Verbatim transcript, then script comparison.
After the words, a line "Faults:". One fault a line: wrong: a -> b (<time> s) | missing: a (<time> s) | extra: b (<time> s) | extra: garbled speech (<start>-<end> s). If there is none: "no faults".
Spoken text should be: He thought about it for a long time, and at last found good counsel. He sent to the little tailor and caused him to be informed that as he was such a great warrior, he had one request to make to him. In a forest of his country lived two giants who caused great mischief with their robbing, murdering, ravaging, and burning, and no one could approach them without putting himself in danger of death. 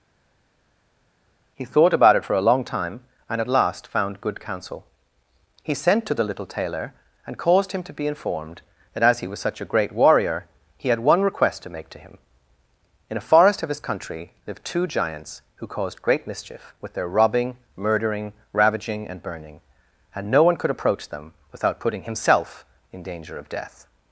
He thought about it for a long time, and at last found good counsel. He sent to the little tailor and caused him to be informed that as he was such a great warrior, he had one request to make to him. In a forest of his country lived two giants who caused great mischief with their robbing, murdering, ravaging, and burning, and no one could approach them without putting himself in danger of death.
Faults:
no faults